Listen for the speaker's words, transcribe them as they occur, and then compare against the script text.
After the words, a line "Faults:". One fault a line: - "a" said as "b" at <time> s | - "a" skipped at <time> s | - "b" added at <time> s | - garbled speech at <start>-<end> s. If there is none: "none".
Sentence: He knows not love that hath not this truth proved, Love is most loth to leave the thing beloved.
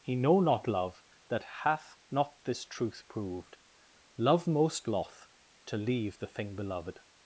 He know not love that hath not this truth proved, Love most loth to leave the thing beloved.
Faults:
- "knows" said as "know" at 0.1 s
- "is" skipped at 4.5 s